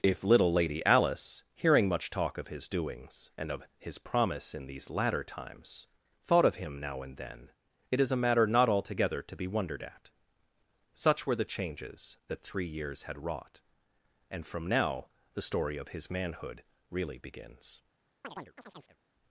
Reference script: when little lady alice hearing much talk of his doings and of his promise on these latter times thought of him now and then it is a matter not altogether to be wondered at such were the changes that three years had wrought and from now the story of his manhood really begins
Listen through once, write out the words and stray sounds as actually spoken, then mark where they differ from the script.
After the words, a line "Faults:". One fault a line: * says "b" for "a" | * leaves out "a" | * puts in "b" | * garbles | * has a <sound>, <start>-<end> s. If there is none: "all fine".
if little lady alice hearing much talk of his doings and of his promise in these latter times thought of him now and then it is a matter not altogether to be wondered at such were the changes that three years had wrought and from now the story of his manhood really begins
Faults:
* says "if" for "when"
* says "in" for "on"
* has a chirp, 18.2-19.0 s